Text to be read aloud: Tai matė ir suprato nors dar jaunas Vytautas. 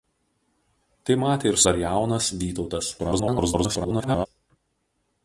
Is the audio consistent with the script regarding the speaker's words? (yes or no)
no